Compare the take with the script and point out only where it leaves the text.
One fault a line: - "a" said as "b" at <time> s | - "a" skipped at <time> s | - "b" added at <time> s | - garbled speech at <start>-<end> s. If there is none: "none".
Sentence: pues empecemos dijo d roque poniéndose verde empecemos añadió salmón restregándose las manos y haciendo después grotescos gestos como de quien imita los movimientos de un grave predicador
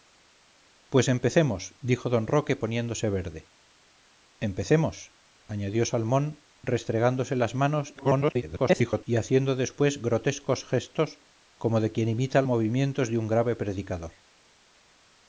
- garbled speech at 8.0-9.0 s
- "los" skipped at 12.4 s